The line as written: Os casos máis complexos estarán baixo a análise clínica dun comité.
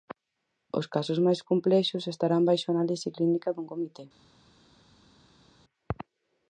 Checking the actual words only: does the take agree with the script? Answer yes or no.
yes